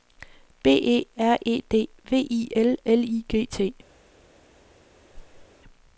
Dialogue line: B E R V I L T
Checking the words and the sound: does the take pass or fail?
fail